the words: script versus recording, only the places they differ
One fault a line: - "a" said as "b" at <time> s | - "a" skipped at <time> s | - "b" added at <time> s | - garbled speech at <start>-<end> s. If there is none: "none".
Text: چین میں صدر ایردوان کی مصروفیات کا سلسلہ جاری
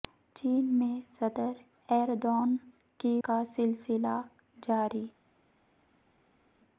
- "مصروفیات" skipped at 3.2 s